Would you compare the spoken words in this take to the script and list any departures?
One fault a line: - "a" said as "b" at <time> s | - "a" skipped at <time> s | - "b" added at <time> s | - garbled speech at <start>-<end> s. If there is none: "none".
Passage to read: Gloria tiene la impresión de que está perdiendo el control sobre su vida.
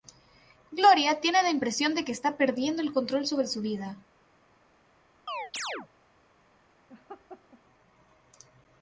none